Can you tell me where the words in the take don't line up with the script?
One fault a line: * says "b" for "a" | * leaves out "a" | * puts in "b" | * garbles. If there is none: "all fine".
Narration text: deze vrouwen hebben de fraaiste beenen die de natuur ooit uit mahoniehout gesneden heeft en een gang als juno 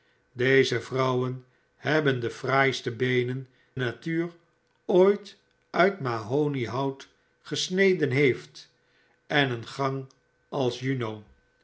* leaves out "die de"